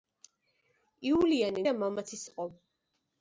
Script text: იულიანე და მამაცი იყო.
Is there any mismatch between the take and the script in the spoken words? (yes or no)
no